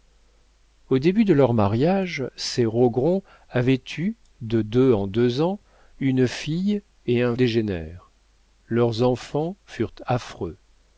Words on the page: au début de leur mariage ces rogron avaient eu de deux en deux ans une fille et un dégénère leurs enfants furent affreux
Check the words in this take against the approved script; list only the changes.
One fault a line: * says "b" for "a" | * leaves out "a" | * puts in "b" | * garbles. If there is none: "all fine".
all fine